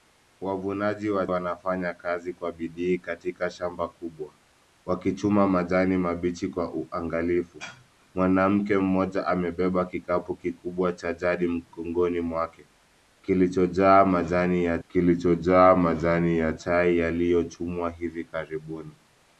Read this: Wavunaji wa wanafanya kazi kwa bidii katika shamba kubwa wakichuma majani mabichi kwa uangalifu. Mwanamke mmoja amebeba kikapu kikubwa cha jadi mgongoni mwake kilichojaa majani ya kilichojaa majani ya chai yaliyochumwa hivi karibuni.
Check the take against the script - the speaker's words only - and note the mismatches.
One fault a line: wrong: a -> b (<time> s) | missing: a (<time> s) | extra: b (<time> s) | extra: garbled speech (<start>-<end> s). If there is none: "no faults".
no faults